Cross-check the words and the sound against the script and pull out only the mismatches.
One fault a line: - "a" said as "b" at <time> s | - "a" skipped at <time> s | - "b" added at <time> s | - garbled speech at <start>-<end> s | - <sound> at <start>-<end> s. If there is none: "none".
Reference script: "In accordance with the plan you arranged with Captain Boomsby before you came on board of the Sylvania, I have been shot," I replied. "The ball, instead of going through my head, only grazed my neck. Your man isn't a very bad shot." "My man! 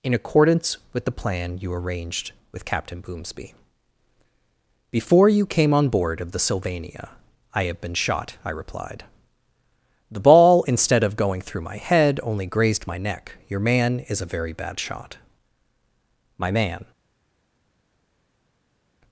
- "isn't" said as "is" at 14.1 s